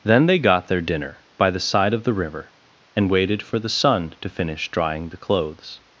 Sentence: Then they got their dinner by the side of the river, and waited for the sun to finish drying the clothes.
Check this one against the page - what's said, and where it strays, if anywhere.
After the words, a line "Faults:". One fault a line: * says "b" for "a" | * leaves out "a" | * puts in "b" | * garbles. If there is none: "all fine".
Then they got their dinner by the side of the river, and waited for the sun to finish drying the clothes.
Faults:
all fine